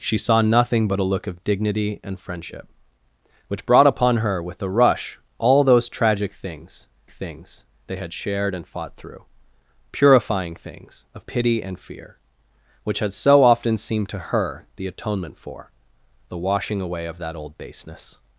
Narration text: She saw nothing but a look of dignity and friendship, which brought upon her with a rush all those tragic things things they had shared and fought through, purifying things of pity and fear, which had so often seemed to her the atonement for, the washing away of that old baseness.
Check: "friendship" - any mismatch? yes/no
no